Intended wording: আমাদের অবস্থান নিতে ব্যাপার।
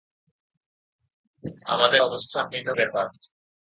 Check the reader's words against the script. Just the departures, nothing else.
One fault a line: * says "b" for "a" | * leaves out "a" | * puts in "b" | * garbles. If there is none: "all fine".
all fine